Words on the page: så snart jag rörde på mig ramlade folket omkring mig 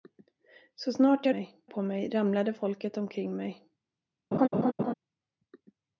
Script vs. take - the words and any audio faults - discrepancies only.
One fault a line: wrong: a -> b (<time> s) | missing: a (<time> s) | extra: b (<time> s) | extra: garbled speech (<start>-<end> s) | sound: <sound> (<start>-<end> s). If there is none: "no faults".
wrong: rörde -> mig (1.3 s)
sound: laugh (4.3-4.9 s)